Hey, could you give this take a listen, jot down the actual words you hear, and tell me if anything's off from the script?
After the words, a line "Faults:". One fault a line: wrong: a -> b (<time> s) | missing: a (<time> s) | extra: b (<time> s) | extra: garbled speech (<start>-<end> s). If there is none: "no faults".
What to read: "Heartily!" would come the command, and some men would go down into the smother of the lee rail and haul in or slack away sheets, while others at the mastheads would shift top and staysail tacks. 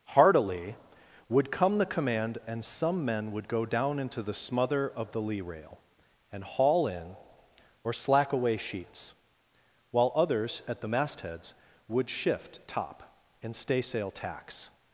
"Heartily!" would come the command, and some men would go down into the smother of the lee rail and haul in or slack away sheets, while others at the mastheads would shift top and staysail tacks.
Faults:
no faults